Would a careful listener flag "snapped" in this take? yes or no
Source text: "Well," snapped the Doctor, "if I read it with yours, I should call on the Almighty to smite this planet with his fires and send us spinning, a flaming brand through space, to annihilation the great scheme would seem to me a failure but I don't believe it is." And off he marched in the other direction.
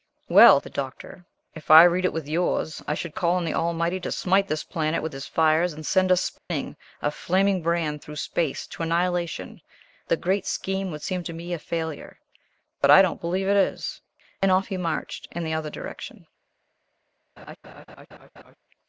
yes